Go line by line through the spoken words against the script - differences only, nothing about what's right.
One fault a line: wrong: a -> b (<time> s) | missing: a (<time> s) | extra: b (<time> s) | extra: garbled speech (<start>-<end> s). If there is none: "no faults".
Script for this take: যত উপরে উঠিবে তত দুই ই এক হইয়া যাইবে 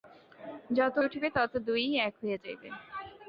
missing: উপরে (0.9 s)